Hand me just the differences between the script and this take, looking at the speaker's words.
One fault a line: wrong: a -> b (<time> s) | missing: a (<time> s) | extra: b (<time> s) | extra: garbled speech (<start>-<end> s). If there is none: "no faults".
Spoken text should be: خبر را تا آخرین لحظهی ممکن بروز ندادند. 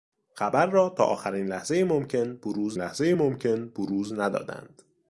extra: لحظهی ممکن بروز (2.8 s)